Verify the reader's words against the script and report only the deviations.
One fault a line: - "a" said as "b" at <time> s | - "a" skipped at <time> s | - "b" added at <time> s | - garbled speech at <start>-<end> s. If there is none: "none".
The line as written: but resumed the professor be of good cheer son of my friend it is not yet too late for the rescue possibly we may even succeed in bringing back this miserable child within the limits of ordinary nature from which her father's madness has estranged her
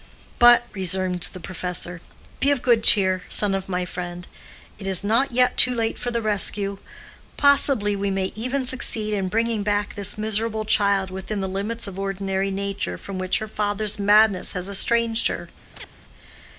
none